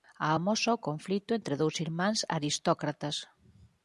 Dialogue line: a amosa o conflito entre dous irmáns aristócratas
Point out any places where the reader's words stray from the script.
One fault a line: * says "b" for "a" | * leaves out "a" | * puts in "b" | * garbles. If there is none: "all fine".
all fine